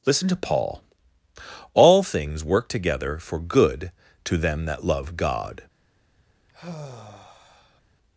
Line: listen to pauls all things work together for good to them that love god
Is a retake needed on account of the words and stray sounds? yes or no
yes